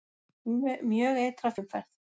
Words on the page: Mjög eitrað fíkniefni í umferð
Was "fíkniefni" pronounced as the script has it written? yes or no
no